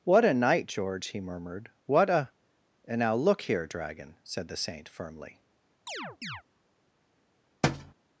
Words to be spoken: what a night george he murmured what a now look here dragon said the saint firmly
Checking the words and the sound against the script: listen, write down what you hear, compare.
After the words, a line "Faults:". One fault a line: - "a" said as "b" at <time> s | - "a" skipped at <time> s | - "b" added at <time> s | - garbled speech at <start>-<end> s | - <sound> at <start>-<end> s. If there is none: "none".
what a night george he murmured what a and now look here dragon said the saint firmly
Faults:
- "and" added at 2.9 s
- chirp at 5.9-6.4 s
- thud at 7.6-7.9 s